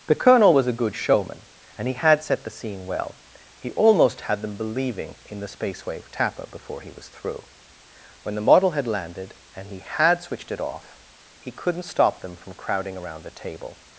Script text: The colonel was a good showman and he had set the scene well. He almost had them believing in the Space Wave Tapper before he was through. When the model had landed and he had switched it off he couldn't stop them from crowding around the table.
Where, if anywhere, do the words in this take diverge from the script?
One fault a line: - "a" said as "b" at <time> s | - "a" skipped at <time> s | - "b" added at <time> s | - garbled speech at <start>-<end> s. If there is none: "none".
none